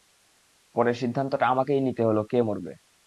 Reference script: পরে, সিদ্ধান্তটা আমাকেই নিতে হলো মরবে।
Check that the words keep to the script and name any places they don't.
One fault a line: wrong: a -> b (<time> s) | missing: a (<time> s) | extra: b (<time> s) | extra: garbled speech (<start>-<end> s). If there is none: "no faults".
extra: কে (2.2 s)